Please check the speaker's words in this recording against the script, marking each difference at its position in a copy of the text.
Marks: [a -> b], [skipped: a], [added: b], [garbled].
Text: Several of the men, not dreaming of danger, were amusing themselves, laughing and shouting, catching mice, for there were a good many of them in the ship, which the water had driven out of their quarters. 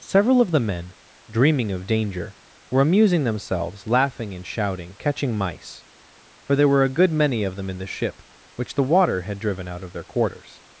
Several of the men, [skipped: not] dreaming of danger, were amusing themselves, laughing and shouting, catching mice, for there were a good many of them in the ship, which the water had driven out of their quarters.